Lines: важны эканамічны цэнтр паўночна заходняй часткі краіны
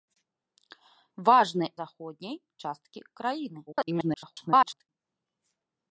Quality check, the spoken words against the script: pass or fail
fail